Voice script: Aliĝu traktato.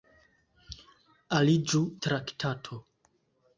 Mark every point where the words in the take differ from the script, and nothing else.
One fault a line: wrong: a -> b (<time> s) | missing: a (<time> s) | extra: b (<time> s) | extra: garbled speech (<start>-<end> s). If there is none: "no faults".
no faults